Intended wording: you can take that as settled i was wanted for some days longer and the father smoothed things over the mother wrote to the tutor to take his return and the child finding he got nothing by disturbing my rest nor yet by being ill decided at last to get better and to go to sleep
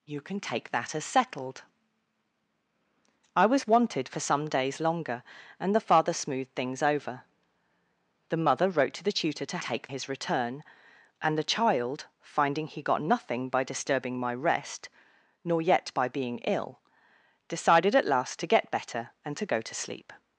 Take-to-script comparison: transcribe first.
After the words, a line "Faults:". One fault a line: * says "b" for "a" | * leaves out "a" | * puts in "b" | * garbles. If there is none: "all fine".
you can take that as settled i was wanted for some days longer and the father smoothed things over the mother wrote to the tutor to take his return and the child finding he got nothing by disturbing my rest nor yet by being ill decided at last to get better and to go to sleep
Faults:
all fine